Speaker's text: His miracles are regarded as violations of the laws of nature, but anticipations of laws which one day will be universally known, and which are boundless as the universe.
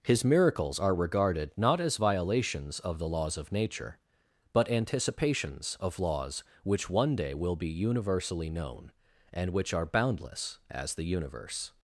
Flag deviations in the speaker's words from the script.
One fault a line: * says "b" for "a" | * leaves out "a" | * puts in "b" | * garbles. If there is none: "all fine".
* puts in "not"